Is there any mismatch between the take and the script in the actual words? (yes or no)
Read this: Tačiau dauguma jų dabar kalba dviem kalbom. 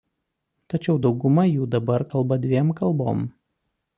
no